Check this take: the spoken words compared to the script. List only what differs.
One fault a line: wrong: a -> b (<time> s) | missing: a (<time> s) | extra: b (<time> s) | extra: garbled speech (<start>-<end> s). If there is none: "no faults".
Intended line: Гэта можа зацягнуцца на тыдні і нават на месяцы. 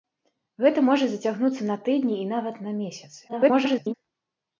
extra: garbled speech (3.3-3.9 s)